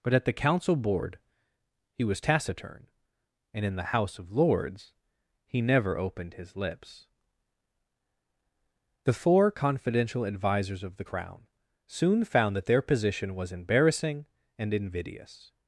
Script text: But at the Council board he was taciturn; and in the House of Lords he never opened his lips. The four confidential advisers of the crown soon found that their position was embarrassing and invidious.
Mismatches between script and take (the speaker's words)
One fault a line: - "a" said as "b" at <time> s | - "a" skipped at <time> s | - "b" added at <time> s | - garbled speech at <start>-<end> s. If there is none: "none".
none